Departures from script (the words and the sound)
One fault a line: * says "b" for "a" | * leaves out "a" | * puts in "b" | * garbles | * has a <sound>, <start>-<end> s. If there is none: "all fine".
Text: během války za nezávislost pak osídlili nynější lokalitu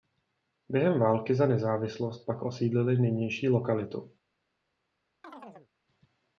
* has a chirp, 5.2-5.7 s